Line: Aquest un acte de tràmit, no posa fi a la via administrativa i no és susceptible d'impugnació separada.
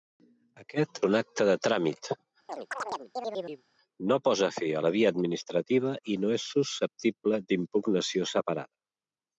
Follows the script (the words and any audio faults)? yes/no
no